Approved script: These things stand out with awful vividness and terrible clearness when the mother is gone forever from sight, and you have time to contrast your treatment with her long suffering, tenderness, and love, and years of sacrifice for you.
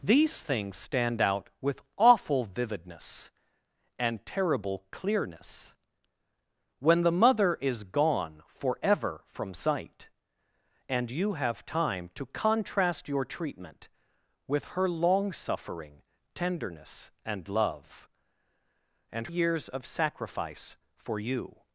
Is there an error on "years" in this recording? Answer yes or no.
no